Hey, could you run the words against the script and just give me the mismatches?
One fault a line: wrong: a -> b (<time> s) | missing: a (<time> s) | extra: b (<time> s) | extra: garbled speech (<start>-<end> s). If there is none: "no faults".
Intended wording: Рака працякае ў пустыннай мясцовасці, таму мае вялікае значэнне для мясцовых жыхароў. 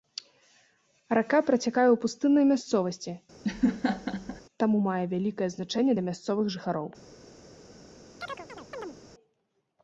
no faults